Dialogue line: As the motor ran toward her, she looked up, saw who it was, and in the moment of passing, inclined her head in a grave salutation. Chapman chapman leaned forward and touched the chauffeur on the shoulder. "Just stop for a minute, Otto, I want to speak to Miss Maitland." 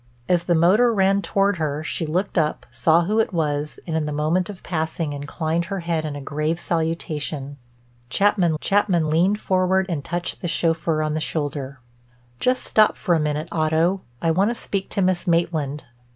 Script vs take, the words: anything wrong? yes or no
no